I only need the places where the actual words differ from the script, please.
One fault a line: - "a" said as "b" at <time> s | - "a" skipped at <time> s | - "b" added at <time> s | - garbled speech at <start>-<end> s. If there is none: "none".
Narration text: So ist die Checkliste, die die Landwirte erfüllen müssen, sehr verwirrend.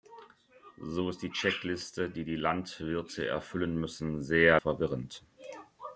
none